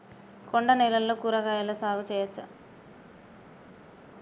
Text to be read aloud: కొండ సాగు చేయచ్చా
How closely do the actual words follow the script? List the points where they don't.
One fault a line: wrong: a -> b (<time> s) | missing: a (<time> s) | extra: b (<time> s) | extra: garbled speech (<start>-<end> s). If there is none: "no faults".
extra: నేలల్లో కూరగాయల (0.7 s)